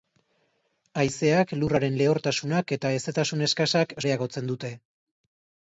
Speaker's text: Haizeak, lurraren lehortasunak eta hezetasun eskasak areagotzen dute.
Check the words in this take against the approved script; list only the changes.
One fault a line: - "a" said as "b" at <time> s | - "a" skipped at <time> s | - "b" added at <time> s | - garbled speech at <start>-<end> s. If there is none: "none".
none